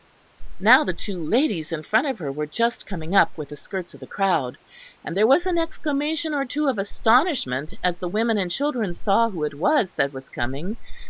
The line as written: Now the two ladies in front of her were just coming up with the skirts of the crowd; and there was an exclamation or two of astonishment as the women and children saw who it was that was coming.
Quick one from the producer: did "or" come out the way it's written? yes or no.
yes